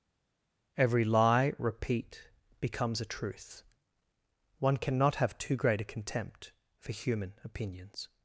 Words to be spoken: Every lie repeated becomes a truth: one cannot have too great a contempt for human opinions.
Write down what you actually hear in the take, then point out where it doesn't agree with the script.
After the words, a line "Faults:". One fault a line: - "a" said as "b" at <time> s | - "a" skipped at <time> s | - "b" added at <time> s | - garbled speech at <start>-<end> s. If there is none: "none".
Every lie repeat becomes a truth: one cannot have too great a contempt for human opinions.
Faults:
- "repeated" said as "repeat" at 1.6 s